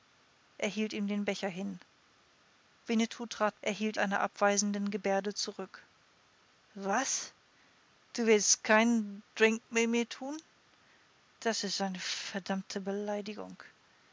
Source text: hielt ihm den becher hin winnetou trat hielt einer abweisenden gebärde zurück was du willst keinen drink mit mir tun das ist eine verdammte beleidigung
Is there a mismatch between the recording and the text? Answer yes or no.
no